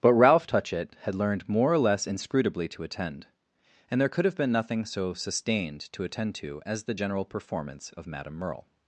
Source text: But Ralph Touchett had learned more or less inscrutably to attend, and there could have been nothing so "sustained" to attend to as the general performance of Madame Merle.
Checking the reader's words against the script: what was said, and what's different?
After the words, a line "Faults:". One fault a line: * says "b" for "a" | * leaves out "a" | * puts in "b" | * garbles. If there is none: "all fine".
But Ralph Touchett had learned more or less inscrutably to attend, and there could have been nothing so "sustained" to attend to as the general performance of Madame Merle.
Faults:
all fine